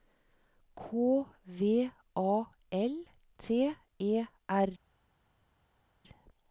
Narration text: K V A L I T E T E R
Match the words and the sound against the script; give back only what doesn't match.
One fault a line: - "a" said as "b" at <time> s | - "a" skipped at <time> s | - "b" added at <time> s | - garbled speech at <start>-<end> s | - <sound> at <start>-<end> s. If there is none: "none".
- "I T E" skipped at 3.0 s